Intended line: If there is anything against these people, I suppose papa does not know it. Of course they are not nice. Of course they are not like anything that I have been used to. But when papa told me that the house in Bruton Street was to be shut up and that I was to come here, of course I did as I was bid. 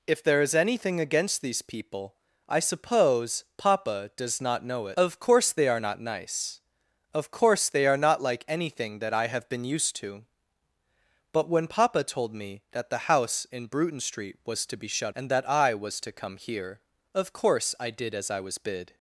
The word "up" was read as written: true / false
false